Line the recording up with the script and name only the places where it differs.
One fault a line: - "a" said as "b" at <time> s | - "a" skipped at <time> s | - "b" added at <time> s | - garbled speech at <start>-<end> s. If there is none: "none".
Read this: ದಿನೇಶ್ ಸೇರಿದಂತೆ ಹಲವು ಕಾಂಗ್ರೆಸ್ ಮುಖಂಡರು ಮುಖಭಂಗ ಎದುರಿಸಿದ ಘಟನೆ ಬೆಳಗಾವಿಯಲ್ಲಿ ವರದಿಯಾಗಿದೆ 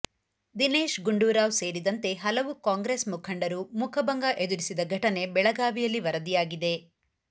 - "ಗುಂಡೂರಾವ್" added at 1.1 s